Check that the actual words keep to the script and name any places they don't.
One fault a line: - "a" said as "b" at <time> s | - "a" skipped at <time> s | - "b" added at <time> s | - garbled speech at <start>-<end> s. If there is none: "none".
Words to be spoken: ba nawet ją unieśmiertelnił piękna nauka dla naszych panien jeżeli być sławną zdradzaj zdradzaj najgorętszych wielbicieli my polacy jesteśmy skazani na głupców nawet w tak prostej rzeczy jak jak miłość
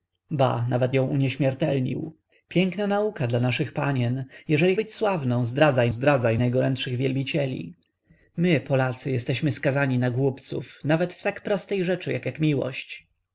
none